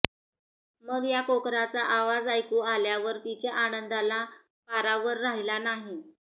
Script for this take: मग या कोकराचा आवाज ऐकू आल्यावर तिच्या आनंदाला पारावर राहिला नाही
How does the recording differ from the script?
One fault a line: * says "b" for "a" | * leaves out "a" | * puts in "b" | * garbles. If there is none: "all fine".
all fine